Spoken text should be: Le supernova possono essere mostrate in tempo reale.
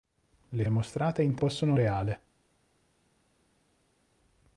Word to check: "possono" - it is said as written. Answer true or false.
false